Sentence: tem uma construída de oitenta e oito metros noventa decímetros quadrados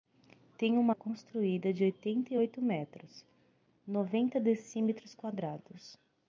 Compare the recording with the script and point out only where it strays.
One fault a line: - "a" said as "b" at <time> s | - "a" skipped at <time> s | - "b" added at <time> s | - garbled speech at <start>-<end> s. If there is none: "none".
none